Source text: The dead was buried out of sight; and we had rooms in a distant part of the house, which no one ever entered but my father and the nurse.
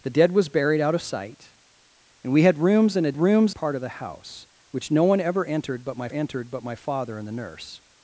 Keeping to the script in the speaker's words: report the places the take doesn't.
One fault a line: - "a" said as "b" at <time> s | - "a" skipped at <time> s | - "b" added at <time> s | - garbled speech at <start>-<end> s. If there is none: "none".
- "distant" said as "rooms" at 3.2 s
- "entered but my" added at 6.1 s